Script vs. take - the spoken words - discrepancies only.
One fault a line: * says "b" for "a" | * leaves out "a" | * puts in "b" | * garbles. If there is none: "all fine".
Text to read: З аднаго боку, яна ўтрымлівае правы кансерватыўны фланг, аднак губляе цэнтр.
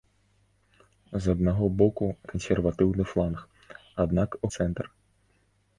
* leaves out "яна ўтрымлівае правы"
* leaves out "губляе"